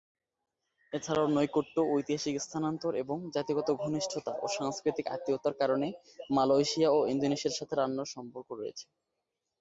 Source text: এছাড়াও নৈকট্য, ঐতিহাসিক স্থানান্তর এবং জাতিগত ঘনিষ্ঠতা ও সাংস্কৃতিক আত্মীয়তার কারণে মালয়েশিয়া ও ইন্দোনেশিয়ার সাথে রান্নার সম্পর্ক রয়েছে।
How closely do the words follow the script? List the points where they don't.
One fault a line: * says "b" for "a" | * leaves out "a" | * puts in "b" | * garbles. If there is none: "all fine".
all fine